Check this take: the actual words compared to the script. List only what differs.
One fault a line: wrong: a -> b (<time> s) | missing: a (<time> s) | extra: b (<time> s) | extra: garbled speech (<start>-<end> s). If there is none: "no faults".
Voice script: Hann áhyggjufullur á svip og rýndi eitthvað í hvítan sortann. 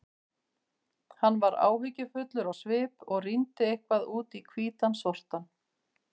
extra: var (1.4 s)
extra: út (4.2 s)